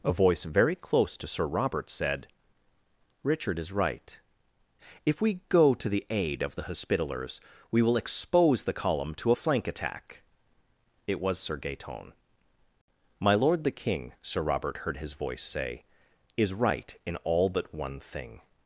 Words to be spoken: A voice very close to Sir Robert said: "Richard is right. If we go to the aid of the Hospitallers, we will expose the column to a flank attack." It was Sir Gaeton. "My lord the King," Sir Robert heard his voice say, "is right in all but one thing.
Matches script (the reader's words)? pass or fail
pass